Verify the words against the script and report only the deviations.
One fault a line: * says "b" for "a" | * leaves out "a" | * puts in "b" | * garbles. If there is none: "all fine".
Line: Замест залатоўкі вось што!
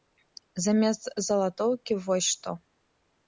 all fine